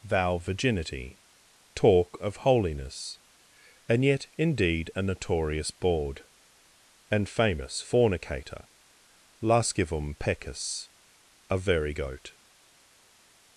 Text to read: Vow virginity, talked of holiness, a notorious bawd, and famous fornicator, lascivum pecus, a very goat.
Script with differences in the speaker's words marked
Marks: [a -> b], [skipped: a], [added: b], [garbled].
Vow virginity, [talked -> talk] of holiness, [added: and yet indeed] a notorious bawd, and famous fornicator, lascivum pecus, a very goat.